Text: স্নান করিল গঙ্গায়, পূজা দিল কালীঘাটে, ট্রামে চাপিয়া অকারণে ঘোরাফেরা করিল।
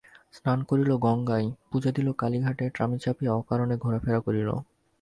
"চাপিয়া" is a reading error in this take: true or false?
false